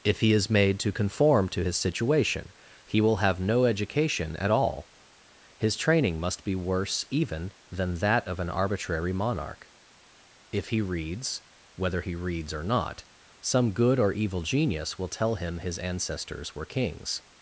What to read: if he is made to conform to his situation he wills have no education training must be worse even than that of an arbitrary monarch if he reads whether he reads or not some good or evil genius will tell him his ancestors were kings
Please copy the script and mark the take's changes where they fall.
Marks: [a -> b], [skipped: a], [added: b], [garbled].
if he is made to conform to his situation he [wills -> will] have no education [added: at all his] training must be worse even than that of an arbitrary monarch if he reads whether he reads or not some good or evil genius will tell him his ancestors were kings